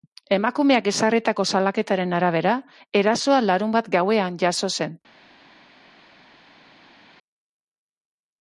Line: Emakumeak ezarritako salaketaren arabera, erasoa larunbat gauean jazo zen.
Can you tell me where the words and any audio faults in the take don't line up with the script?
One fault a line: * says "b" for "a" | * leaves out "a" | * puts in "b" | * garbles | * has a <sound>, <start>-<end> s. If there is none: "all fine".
all fine